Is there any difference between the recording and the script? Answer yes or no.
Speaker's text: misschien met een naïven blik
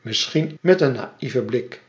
no